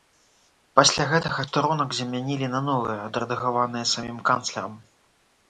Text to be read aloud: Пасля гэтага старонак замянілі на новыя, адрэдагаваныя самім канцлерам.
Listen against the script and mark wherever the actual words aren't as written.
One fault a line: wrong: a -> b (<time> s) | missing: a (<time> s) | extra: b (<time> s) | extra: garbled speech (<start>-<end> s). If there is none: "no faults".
no faults